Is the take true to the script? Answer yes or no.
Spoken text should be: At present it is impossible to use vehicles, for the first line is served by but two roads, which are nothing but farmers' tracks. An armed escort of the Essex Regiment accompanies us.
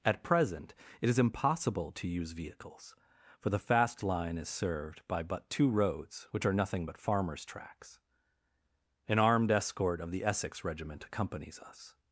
no